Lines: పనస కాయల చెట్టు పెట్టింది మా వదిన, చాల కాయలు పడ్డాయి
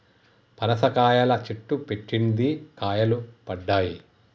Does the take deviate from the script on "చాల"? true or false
true